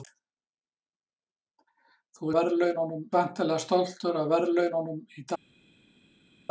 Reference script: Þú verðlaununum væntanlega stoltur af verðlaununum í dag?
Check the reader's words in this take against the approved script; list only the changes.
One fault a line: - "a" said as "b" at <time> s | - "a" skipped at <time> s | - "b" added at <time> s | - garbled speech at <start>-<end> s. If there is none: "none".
none